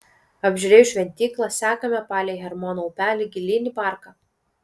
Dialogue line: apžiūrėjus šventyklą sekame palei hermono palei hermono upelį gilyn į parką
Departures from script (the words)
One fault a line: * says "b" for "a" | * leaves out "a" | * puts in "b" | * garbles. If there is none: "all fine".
* leaves out "palei hermono"